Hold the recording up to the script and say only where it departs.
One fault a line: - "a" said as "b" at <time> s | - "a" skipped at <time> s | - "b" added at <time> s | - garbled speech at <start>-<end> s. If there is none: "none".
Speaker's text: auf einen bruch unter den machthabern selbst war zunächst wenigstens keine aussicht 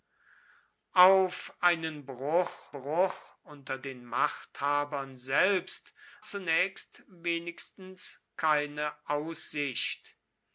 - "bruch" added at 2.7 s
- "war" skipped at 5.9 s